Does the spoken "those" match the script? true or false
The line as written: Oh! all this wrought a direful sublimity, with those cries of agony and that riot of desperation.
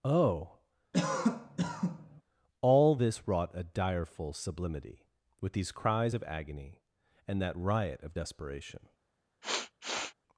false